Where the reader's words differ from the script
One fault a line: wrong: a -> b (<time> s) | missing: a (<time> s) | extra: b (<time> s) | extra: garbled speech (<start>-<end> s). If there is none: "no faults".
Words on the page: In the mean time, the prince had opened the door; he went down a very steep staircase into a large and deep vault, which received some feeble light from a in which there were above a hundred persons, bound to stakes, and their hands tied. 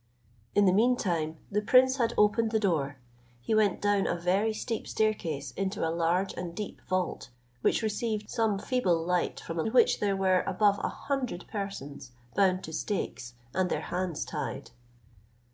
no faults